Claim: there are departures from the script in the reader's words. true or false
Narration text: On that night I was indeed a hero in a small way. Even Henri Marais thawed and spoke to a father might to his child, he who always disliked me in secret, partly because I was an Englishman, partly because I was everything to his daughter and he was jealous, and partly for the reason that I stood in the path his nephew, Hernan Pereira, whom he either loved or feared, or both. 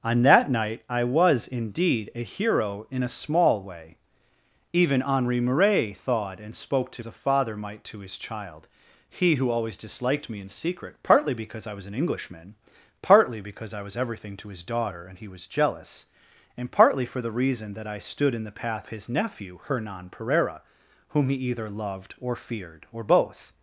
false